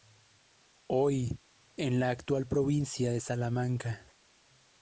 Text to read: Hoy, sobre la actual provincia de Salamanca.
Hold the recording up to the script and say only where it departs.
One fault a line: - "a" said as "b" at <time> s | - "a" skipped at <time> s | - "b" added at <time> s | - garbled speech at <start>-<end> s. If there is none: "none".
- "sobre" said as "en" at 1.8 s